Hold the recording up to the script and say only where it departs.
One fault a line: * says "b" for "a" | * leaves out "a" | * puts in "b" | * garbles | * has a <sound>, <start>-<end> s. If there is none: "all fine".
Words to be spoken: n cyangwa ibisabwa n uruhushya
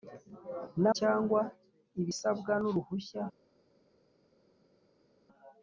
all fine